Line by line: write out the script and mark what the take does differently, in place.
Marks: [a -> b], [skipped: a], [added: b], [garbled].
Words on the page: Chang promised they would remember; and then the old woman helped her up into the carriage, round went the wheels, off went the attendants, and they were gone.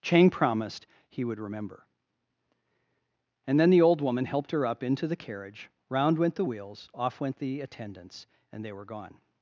Chang promised [they -> he] would remember; and then the old woman helped her up into the carriage, round went the wheels, off went the attendants, and they were gone.